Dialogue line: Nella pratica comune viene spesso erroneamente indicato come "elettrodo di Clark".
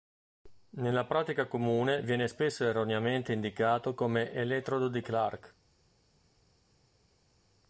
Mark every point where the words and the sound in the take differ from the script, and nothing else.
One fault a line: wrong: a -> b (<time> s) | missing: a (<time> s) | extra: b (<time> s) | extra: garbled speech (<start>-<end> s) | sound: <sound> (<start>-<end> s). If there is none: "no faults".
no faults